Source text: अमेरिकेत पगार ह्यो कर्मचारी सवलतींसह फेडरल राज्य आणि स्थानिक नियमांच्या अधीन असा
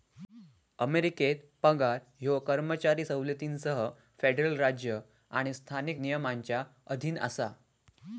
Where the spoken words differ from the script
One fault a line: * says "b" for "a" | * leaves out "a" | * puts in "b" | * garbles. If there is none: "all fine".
all fine